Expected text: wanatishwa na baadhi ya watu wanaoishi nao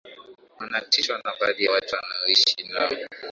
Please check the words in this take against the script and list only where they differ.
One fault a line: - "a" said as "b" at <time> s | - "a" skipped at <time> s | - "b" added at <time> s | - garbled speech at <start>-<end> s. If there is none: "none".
- "ya" skipped at 1.6 s